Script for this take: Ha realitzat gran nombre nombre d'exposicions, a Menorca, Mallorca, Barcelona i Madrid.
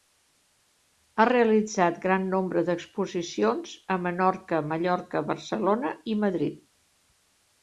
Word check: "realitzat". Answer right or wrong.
right